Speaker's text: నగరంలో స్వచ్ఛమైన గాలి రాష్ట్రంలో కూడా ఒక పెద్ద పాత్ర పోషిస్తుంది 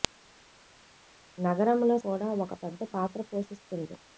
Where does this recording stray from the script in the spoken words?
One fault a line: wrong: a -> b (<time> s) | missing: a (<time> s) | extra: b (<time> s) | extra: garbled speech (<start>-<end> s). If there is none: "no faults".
missing: స్వచ్ఛమైన గాలి రాష్ట్రంలో (2.0 s)